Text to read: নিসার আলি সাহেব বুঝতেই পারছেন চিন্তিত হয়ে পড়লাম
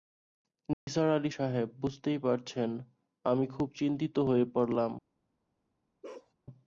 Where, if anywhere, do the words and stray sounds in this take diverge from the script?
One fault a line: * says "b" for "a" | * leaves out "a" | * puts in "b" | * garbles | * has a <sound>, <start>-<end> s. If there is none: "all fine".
* has a dropout, 0.7-0.9 s
* puts in "আমি খুব"
* has a bark, 6.0-6.3 s